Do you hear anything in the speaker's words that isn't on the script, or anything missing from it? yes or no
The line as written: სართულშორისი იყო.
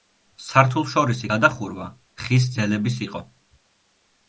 yes